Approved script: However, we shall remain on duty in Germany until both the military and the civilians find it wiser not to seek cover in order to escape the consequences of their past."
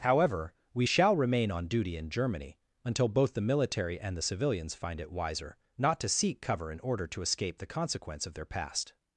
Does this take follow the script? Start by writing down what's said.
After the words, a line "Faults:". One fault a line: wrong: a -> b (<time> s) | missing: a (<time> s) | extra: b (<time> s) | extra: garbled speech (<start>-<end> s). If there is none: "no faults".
However, we shall remain on duty in Germany until both the military and the civilians find it wiser not to seek cover in order to escape the consequence of their past."
Faults:
wrong: consequences -> consequence (7.7 s)